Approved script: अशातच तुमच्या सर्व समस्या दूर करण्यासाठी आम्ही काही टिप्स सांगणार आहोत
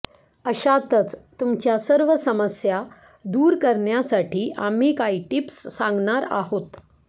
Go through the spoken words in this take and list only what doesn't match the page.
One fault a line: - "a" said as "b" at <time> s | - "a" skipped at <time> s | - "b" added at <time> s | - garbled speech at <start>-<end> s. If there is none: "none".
none